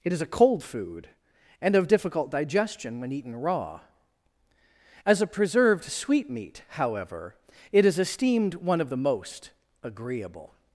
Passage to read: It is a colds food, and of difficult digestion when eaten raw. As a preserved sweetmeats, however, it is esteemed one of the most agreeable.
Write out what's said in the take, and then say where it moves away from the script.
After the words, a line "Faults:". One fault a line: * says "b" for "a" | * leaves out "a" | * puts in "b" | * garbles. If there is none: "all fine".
It is a cold food, and of difficult digestion when eaten raw. As a preserved sweetmeat, however, it is esteemed one of the most agreeable.
Faults:
* says "cold" for "colds"
* says "sweetmeat" for "sweetmeats"